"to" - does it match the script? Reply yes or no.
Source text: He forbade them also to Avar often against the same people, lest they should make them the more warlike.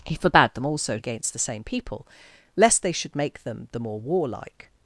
no